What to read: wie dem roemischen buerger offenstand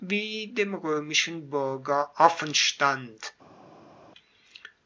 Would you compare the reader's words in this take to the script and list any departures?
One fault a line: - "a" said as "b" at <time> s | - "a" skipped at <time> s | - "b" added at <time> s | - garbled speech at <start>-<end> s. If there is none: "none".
none